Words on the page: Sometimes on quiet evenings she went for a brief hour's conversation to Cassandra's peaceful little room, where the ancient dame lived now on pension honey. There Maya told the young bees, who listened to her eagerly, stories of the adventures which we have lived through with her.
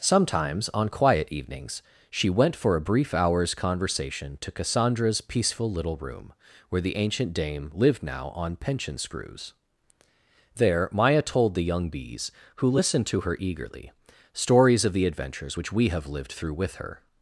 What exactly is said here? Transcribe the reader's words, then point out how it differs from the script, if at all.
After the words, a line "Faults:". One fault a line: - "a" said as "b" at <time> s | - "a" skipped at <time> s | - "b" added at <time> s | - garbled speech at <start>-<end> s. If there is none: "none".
Sometimes on quiet evenings she went for a brief hour's conversation to Cassandra's peaceful little room, where the ancient dame lived now on pension screws. There Maya told the young bees, who listened to her eagerly, stories of the adventures which we have lived through with her.
Faults:
- "honey" said as "screws" at 9.0 s